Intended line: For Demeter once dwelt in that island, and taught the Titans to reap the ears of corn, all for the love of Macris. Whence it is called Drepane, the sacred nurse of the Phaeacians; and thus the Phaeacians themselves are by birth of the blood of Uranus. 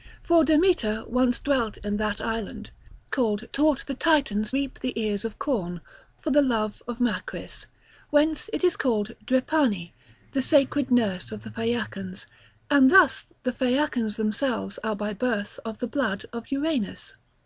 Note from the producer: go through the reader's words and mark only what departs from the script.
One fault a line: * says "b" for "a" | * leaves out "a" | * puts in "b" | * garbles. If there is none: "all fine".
* says "called" for "and"
* leaves out "to"
* leaves out "all"